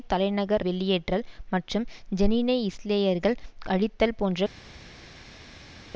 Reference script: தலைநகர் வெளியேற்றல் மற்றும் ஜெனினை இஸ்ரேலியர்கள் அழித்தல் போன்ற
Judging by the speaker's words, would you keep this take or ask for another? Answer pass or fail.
pass